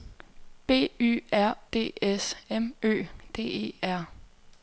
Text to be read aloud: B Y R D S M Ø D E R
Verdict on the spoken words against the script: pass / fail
pass